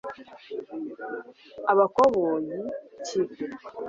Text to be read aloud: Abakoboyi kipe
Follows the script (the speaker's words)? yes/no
yes